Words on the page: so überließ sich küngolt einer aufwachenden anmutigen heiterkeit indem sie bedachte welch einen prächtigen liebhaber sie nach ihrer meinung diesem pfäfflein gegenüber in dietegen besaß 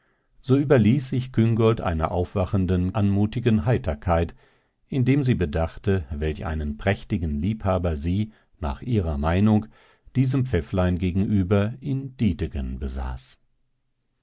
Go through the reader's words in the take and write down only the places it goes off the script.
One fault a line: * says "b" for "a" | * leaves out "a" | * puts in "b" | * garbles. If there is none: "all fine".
all fine